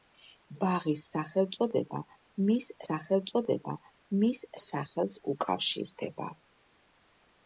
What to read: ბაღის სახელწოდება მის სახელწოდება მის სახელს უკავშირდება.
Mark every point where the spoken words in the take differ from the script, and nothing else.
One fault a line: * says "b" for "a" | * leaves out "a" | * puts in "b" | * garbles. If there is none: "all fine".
all fine